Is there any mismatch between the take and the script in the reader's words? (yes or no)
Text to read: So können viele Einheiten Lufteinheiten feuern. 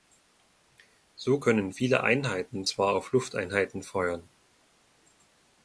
yes